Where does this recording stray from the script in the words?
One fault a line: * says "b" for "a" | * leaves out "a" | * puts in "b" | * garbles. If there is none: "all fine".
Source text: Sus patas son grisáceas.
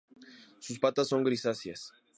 all fine